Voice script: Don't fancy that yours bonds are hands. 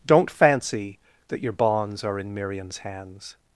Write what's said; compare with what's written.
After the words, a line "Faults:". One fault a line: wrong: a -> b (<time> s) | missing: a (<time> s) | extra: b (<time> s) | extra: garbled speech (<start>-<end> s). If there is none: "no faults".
Don't fancy that your bonds are in Miriam's hands.
Faults:
wrong: yours -> your (1.4 s)
extra: in Miriam's (2.2 s)